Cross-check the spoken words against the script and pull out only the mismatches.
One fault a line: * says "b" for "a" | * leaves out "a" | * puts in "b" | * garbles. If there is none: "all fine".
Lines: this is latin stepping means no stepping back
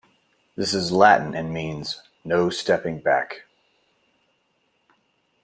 * says "and" for "stepping"